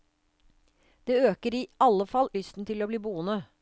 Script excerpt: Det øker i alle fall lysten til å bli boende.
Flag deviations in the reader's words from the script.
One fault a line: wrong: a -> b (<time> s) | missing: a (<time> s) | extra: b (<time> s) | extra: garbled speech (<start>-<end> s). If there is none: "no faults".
no faults